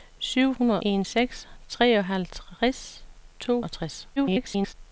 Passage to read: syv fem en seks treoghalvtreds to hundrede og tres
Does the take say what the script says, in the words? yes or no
no